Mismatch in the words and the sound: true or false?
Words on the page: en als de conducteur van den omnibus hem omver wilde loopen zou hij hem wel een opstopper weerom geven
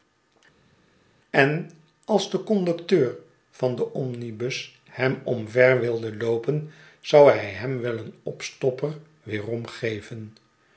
false